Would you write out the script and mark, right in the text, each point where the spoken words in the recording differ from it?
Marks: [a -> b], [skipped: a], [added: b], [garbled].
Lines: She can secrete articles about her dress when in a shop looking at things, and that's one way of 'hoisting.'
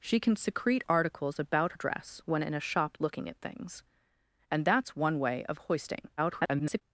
She can secrete articles about [skipped: her] dress when in a shop looking at things, and that's one way of 'hoisting.' [garbled]